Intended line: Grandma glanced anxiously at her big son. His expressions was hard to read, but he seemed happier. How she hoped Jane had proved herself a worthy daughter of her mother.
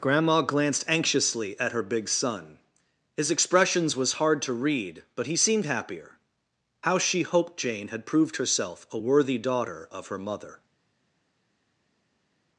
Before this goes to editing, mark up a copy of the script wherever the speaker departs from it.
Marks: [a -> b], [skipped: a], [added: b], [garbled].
Grandma glanced anxiously at her big son. His expressions was hard to read, but he seemed happier. How she hoped Jane had proved herself a worthy daughter of her mother.